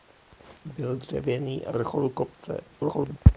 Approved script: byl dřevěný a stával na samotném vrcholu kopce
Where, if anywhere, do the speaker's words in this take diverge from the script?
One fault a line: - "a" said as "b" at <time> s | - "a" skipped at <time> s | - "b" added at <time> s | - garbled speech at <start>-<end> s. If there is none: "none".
- "stával na samotném" skipped at 1.7 s
- garbled speech at 2.7-3.2 s